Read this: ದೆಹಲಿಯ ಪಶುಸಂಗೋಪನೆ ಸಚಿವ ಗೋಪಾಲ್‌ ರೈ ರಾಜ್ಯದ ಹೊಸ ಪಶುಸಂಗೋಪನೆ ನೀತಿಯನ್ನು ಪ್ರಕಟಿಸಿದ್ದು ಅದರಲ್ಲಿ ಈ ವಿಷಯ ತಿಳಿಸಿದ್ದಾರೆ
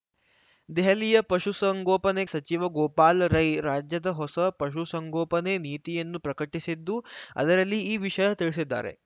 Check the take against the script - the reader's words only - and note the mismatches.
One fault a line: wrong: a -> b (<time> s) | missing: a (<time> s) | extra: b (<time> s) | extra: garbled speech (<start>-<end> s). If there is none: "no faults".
no faults